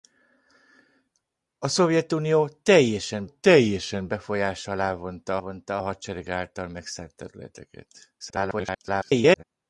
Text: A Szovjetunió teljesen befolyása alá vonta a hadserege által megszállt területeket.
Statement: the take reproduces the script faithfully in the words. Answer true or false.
false